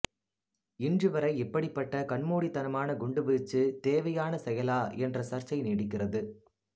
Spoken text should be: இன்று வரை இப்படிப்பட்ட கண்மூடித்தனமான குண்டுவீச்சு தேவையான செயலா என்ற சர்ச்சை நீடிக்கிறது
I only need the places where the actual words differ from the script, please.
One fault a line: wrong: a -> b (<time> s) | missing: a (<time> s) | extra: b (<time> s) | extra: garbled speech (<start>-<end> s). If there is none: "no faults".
no faults